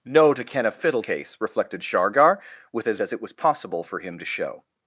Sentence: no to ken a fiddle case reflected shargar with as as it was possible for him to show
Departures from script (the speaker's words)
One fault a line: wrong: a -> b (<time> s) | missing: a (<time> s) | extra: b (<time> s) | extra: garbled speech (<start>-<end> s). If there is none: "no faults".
no faults